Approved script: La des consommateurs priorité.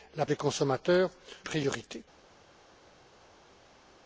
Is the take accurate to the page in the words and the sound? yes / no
yes